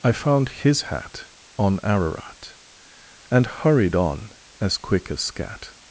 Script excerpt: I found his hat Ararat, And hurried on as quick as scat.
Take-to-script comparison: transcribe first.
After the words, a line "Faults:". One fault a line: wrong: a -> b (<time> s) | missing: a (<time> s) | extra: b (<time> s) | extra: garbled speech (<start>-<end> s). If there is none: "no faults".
I found his hat On Ararat, And hurried on as quick as scat.
Faults:
extra: On (1.6 s)